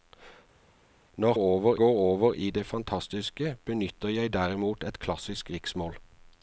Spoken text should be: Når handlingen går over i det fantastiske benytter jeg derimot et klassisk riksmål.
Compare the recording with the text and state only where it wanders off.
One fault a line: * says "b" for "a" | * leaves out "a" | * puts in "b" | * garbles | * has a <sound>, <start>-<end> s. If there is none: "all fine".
* says "over" for "handlingen"